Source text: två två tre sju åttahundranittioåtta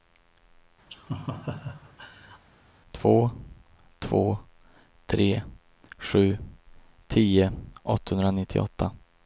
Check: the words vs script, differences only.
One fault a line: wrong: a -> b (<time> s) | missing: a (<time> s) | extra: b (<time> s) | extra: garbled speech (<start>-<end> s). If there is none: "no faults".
extra: tio (7.1 s)